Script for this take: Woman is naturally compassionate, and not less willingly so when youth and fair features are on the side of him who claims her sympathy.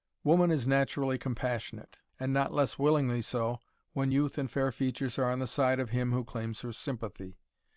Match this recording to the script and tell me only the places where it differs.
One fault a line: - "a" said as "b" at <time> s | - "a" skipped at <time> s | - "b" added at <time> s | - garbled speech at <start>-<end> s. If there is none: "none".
none